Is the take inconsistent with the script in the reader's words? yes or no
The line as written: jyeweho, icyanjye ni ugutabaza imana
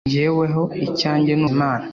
yes